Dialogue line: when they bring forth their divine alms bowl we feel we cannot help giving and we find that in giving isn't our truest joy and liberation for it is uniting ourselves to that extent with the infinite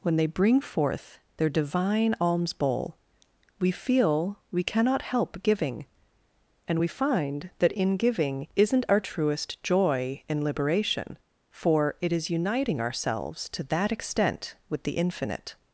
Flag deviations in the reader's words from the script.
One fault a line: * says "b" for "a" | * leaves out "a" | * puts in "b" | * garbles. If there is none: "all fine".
all fine